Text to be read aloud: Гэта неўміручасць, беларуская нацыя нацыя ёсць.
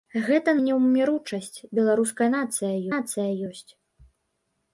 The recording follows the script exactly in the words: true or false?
true